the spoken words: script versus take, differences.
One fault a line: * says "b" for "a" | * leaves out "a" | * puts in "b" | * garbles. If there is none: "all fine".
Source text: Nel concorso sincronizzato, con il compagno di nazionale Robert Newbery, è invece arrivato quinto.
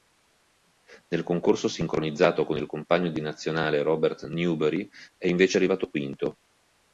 all fine